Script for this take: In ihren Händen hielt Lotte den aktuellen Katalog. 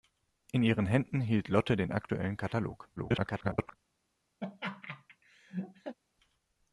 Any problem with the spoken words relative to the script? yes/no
yes